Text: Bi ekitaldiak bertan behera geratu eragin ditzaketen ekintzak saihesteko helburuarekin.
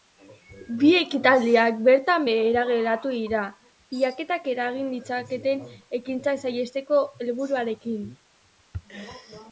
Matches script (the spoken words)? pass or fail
fail